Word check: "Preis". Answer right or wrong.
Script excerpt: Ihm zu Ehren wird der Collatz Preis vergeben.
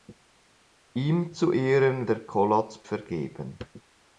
wrong